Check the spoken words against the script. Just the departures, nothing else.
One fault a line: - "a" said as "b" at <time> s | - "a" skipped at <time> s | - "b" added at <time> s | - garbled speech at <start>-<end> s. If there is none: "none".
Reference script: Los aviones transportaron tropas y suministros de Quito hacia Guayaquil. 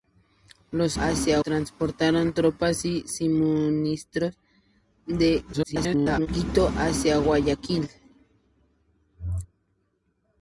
- "aviones" said as "hacia" at 1.0 s
- garbled speech at 5.5-6.3 s